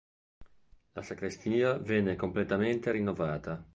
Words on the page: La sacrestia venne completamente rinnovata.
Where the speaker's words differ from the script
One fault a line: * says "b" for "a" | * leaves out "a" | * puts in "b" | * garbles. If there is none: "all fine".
all fine